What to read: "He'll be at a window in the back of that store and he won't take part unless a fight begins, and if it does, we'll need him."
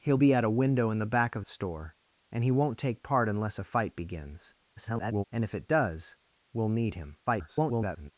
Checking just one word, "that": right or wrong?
wrong